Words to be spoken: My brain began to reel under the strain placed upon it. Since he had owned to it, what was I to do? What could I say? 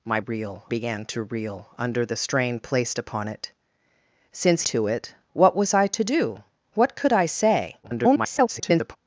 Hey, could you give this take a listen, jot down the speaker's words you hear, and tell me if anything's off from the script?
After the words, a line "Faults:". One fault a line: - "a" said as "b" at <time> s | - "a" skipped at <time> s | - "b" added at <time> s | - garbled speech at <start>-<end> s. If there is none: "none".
My reel began to reel under the strain placed upon it. Since to it, what was I to do? What could I say? [garbled]
Faults:
- "brain" said as "reel" at 0.2 s
- "he had owned" skipped at 4.6 s
- garbled speech at 7.8-9.0 s